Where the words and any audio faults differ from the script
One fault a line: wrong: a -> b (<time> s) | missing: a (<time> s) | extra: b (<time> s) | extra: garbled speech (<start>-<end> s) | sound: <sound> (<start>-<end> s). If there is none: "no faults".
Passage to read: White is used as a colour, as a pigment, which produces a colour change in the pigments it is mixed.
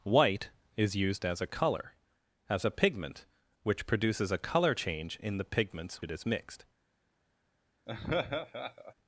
sound: laugh (7.9-8.9 s)